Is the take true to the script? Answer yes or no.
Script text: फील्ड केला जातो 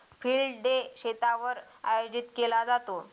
no